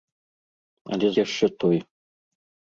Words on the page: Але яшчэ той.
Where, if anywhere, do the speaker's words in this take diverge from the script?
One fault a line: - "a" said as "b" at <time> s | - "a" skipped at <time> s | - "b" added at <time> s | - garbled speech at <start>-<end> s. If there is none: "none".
none